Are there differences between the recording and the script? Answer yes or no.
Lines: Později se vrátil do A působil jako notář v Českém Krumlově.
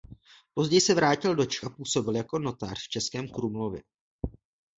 yes